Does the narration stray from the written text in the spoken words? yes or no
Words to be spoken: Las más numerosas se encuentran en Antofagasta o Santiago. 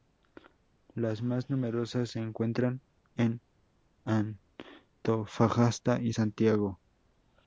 yes